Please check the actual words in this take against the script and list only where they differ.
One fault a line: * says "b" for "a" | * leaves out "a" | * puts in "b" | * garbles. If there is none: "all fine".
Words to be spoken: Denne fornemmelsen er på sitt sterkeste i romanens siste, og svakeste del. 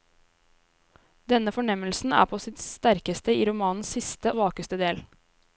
* leaves out "og"